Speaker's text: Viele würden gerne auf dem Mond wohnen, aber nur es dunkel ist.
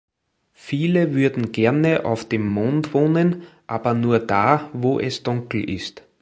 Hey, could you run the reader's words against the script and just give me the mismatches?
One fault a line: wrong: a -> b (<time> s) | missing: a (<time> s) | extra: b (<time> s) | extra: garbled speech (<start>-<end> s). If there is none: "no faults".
extra: da wo (4.2 s)